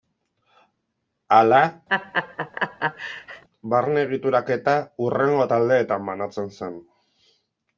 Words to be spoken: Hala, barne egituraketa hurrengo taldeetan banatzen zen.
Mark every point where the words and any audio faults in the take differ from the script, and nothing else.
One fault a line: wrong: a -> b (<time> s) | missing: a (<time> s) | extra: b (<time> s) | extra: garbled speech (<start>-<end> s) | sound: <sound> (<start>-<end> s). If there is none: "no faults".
sound: laugh (1.9-3.4 s)